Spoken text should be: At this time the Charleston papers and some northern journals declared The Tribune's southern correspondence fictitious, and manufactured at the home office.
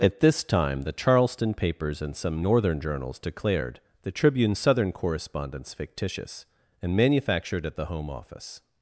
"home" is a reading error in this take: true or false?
false